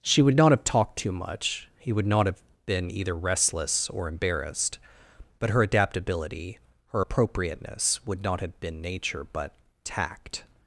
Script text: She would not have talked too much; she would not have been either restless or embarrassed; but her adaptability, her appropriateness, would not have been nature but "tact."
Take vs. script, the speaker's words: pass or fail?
fail